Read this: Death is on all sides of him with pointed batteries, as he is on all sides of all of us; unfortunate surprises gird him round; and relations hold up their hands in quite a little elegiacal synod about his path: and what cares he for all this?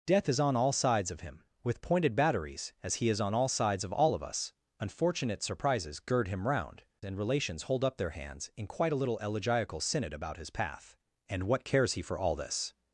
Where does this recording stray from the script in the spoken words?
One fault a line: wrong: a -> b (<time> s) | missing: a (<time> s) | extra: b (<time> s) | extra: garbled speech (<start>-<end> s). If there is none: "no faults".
no faults